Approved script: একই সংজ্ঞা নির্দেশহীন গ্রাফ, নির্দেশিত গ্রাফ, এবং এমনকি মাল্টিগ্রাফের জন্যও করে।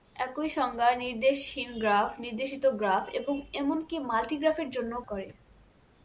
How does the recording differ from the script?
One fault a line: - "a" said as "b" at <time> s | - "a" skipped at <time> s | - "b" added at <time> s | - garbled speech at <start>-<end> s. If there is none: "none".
none